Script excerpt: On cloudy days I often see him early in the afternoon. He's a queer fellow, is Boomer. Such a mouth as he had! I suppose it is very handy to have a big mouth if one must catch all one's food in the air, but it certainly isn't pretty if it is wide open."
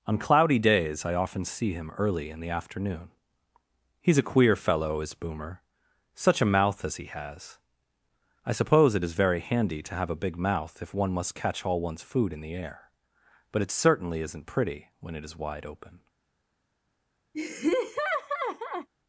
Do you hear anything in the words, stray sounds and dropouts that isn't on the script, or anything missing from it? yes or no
yes